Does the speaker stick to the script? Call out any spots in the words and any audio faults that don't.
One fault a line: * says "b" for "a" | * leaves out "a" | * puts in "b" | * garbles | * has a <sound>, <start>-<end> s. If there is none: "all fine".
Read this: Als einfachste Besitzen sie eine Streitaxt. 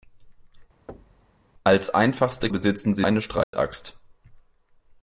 * has a thud, 0.9-1.3 s
* has a dropout, 3.4-3.5 s